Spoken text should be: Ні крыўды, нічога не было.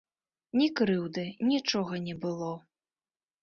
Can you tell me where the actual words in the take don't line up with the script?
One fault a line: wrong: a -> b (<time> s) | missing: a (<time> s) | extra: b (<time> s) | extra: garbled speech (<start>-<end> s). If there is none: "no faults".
no faults